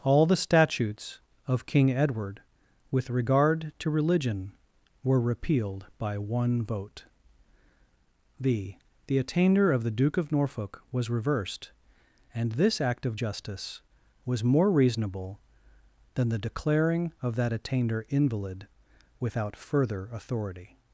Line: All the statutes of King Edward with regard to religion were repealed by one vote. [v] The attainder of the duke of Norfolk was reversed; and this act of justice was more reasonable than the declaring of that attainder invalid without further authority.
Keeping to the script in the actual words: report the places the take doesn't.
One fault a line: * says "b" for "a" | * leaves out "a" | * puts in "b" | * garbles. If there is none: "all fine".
* says "the" for "v"